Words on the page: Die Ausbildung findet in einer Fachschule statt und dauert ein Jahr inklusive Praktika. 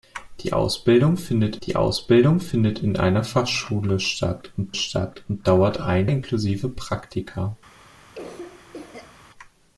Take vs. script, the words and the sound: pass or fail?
fail